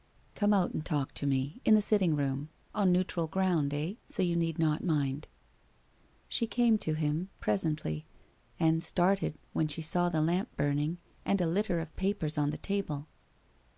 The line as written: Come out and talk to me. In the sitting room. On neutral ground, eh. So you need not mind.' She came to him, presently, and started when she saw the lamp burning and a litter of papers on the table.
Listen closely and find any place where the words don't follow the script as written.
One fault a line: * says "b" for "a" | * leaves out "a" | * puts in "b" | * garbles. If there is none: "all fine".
all fine